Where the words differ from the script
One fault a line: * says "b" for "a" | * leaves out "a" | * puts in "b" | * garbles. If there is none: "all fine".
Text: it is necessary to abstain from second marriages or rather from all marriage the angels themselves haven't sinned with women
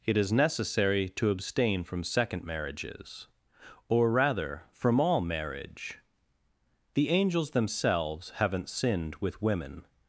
all fine